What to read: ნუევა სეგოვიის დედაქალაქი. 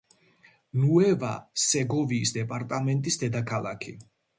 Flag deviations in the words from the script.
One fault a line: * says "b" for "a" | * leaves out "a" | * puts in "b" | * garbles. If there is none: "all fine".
* puts in "დეპარტამენტის"